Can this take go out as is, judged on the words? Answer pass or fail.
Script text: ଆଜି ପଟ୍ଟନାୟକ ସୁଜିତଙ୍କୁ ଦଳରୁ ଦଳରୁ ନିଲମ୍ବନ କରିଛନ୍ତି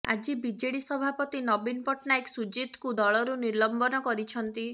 fail